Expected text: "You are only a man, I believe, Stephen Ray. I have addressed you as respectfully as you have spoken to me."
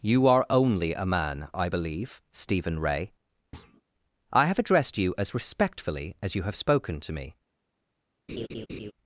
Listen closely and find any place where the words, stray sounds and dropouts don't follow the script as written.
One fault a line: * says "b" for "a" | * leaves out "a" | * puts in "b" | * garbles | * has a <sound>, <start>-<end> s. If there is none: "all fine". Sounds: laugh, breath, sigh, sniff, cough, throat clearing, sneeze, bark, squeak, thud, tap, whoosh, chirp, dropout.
* has a thud, 3.5-3.8 s
* has a laugh, 8.3-8.9 s